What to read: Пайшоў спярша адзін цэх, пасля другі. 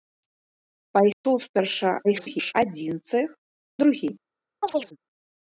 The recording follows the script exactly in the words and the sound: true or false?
false